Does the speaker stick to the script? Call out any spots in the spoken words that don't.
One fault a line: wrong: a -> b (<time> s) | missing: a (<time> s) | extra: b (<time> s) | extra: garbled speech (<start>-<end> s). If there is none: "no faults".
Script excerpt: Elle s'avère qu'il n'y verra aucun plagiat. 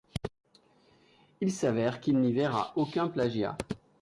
wrong: Elle -> Il (1.4 s)